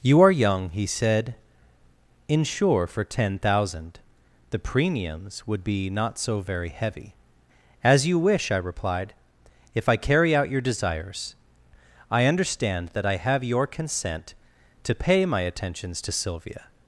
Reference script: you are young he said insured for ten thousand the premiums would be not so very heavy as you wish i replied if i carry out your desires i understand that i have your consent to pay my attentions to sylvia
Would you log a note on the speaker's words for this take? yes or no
yes